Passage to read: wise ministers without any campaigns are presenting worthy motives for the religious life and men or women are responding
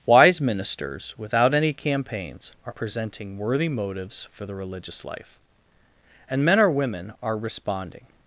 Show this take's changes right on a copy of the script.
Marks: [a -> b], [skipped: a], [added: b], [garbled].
wise ministers without any campaigns are presenting worthy motives for the religious life and men or women are responding